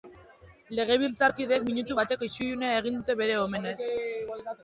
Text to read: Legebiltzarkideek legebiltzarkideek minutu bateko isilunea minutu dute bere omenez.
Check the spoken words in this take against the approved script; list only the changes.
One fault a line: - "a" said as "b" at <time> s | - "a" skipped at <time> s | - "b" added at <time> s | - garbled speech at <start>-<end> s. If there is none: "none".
- "legebiltzarkideek" skipped at 1.7 s
- "minutu" said as "egin" at 2.8 s